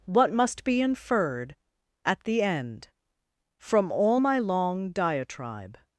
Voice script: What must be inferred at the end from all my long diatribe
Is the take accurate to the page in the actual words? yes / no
yes